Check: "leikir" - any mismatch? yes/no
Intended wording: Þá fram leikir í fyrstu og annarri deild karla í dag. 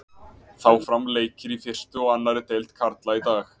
no